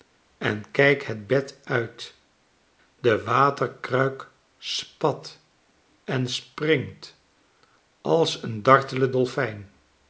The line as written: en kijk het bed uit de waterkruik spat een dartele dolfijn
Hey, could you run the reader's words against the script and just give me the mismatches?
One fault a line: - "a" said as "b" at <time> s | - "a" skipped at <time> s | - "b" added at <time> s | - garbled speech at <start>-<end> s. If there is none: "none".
- "en springt als" added at 6.0 s